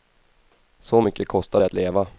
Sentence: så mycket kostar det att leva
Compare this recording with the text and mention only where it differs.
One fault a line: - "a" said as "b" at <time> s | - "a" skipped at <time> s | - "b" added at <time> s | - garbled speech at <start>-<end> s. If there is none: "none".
none